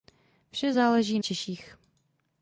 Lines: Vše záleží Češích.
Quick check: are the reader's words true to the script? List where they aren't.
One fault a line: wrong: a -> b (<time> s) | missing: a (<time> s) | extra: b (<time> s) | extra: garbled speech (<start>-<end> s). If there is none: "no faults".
no faults